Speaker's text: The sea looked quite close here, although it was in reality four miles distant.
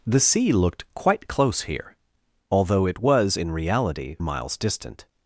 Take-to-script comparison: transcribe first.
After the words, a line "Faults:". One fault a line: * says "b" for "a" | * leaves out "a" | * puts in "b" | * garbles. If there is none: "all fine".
The sea looked quite close here, although it was in reality miles distant.
Faults:
* leaves out "four"